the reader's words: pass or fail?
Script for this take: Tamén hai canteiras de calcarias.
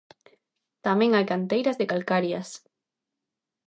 pass